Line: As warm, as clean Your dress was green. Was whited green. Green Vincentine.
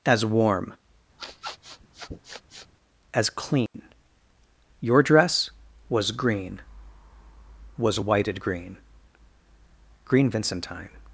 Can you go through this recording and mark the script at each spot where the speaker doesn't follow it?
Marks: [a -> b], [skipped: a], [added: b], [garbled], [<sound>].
As warm, [sniff] as clean [dropout] Your dress was green. Was whited green. Green Vincentine.